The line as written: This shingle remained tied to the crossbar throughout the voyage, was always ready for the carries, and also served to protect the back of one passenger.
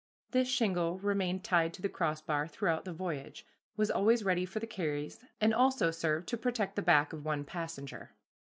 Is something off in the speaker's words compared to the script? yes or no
no